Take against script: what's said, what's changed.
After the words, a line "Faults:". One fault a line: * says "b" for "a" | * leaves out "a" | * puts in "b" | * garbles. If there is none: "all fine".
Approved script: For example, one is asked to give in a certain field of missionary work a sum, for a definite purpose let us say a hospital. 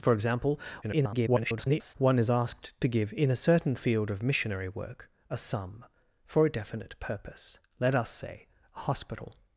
For example, [garbled] one is asked to give in a certain field of missionary work a sum, for a definite purpose let us say a hospital.
Faults:
* garbles